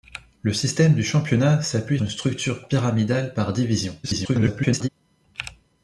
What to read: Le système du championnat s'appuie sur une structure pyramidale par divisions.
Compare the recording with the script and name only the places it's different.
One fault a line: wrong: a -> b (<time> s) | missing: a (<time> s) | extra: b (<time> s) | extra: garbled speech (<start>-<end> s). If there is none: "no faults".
missing: sur (2.0 s)
extra: garbled speech (4.0-4.9 s)